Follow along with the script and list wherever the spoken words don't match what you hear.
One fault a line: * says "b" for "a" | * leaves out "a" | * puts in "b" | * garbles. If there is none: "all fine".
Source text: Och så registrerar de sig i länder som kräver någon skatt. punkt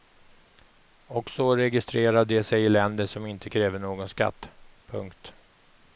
* puts in "inte"